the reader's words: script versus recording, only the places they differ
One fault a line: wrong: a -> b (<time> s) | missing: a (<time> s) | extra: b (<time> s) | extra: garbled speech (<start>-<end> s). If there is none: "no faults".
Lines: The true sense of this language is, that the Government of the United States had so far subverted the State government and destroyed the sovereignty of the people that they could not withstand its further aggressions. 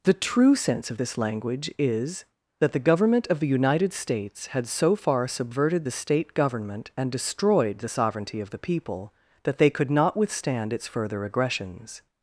no faults